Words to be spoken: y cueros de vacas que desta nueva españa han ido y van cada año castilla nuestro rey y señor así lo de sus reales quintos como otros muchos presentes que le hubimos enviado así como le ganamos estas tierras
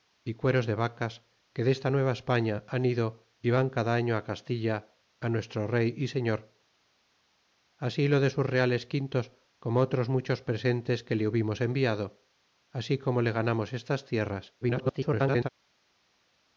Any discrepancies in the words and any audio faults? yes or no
yes